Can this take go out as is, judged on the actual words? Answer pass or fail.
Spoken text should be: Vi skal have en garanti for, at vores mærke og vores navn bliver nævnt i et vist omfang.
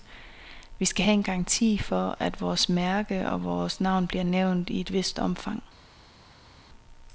pass